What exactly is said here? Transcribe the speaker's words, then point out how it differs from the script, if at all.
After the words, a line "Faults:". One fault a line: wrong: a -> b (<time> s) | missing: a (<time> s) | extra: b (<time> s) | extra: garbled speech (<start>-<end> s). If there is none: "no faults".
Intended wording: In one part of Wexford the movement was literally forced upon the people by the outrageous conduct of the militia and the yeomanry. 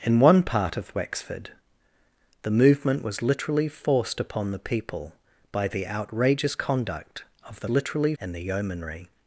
In one part of Wexford the movement was literally forced upon the people by the outrageous conduct of the literally and the yeomanry.
Faults:
wrong: militia -> literally (7.7 s)